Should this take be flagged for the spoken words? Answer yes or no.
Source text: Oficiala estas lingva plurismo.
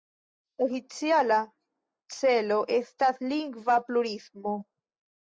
yes